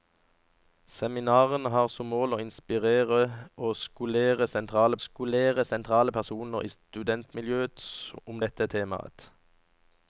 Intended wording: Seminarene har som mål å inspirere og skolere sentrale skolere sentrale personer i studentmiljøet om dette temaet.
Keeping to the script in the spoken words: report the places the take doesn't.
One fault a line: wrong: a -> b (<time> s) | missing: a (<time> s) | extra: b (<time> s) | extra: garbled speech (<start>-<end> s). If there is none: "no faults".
no faults